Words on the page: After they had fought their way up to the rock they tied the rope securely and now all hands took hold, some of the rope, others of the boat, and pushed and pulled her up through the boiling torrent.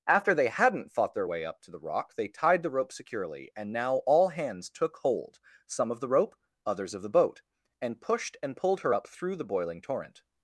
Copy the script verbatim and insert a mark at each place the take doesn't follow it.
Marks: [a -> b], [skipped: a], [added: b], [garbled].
After they [had -> hadn't] fought their way up to the rock they tied the rope securely and now all hands took hold, some of the rope, others of the boat, and pushed and pulled her up through the boiling torrent.